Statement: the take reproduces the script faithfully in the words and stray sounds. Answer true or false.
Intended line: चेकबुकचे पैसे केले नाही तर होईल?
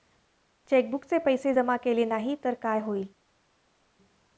false